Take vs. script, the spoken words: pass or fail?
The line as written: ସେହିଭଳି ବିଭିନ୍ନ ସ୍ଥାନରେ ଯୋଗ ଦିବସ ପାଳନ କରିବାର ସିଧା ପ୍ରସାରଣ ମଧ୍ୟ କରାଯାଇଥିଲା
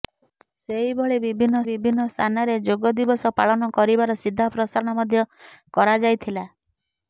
fail